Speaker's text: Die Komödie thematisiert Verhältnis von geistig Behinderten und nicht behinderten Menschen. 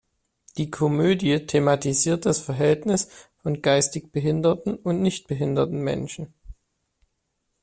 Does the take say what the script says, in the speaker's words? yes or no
no